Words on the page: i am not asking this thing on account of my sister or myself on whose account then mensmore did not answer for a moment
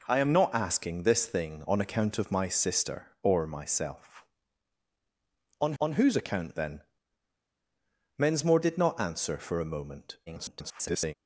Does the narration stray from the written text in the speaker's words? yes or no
yes